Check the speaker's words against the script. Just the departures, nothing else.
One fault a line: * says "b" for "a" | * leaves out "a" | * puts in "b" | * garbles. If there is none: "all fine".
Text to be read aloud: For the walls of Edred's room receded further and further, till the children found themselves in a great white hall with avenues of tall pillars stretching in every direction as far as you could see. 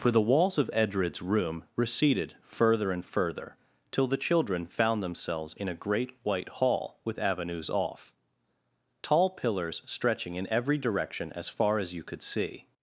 * says "off" for "of"